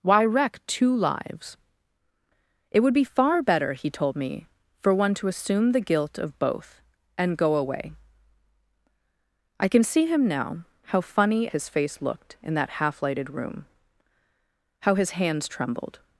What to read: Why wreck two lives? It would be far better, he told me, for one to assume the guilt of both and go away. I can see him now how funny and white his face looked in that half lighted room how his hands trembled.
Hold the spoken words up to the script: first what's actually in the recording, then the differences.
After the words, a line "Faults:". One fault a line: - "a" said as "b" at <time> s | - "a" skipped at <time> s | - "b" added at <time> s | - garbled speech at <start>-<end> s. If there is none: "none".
Why wreck two lives? It would be far better, he told me, for one to assume the guilt of both and go away. I can see him now how funny his face looked in that half lighted room how his hands trembled.
Faults:
- "and white" skipped at 11.5 s